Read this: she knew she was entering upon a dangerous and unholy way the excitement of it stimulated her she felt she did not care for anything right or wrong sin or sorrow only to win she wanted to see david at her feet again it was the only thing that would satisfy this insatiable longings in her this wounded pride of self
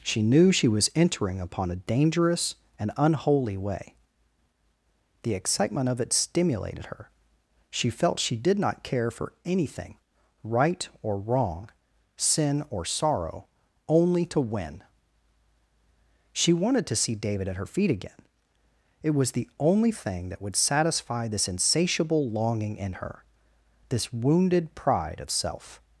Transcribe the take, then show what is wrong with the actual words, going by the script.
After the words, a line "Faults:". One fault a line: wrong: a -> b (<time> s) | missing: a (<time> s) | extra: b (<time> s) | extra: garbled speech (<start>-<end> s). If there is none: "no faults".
she knew she was entering upon a dangerous and unholy way the excitement of it stimulated her she felt she did not care for anything right or wrong sin or sorrow only to win she wanted to see david at her feet again it was the only thing that would satisfy this insatiable longing in her this wounded pride of self
Faults:
wrong: longings -> longing (22.3 s)